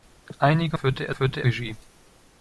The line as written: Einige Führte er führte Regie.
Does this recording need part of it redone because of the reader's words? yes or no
no